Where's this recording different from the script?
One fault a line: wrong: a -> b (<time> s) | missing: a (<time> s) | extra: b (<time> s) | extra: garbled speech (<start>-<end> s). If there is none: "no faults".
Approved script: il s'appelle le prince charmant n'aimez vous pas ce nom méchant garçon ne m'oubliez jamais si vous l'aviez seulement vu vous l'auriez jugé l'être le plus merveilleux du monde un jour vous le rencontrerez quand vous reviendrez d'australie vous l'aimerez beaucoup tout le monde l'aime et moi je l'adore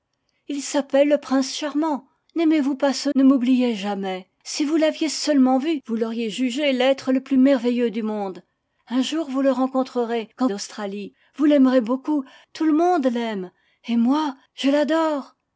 missing: nom méchant garçon (3.1 s)
missing: vous reviendrez (10.5 s)